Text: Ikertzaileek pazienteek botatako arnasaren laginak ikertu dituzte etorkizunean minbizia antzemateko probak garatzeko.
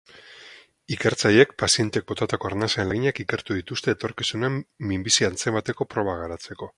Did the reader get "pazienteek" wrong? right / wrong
right